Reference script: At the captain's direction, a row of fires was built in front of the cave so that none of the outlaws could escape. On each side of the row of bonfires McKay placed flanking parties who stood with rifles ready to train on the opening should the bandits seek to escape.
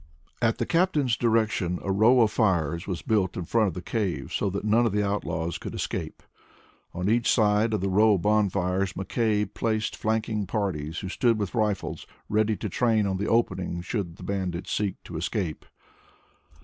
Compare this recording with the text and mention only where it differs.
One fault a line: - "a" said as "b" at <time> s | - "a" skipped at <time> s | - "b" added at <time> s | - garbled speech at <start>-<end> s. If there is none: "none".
none